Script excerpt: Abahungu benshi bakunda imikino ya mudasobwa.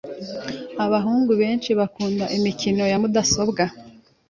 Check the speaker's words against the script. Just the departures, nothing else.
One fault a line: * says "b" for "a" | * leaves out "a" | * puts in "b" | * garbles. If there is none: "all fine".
all fine